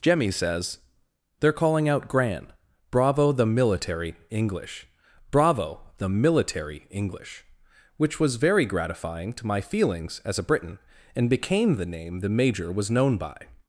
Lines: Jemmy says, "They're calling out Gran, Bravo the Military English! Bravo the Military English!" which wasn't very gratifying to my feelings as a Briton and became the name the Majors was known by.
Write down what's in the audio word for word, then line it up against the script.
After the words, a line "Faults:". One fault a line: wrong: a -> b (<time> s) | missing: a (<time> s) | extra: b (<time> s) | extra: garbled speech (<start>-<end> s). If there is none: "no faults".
Jemmy says, "They're calling out Gran, Bravo the Military English! Bravo the Military English!" which was very gratifying to my feelings as a Briton and became the name the Major was known by.
Faults:
wrong: wasn't -> was (8.2 s)
wrong: Majors -> Major (12.3 s)